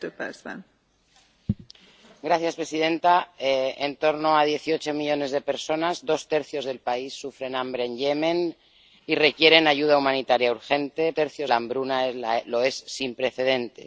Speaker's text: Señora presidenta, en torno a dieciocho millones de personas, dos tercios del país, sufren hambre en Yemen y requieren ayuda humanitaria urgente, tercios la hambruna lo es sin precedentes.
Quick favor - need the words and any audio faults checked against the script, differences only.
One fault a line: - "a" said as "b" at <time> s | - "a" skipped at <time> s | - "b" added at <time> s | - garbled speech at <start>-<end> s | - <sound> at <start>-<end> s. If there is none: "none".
none